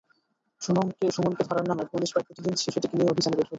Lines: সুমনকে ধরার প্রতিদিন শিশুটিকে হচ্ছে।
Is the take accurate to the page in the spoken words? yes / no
no